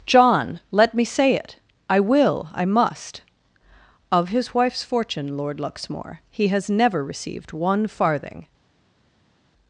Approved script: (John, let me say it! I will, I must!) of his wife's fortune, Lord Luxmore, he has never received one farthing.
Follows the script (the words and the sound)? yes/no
yes